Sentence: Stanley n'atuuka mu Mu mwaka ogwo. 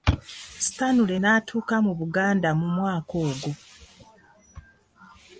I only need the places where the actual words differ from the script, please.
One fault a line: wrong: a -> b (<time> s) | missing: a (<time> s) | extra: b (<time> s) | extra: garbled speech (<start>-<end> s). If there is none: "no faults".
extra: Buganda (2.0 s)